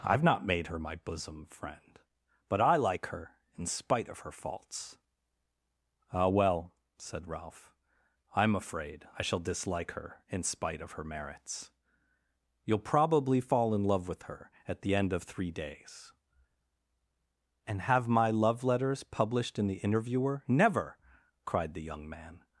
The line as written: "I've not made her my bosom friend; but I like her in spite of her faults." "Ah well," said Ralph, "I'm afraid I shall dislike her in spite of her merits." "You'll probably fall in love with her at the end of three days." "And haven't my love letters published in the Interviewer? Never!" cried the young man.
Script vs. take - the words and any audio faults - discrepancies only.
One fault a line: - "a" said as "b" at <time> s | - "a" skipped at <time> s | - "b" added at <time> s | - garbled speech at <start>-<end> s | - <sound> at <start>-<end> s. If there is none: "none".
- "haven't" said as "have" at 17.8 s